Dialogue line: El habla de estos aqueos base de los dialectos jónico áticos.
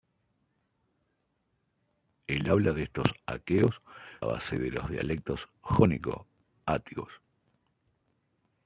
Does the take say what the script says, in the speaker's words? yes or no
yes